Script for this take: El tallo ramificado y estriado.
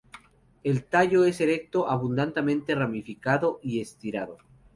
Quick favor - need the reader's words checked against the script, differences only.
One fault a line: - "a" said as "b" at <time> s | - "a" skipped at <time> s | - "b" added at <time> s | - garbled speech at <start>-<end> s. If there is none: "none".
- "es erecto abundantemente" added at 1.2 s